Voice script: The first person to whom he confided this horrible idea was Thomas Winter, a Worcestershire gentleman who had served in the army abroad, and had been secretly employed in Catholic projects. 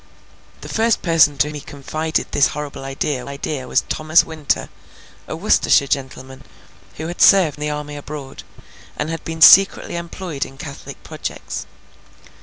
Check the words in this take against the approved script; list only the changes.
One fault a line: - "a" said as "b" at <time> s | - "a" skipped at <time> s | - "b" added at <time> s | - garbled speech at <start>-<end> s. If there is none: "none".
- "whom" skipped at 1.5 s
- "idea" added at 3.3 s
- "in" skipped at 7.6 s